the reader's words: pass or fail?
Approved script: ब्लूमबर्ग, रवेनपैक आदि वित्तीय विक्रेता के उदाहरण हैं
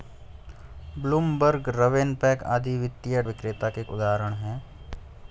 pass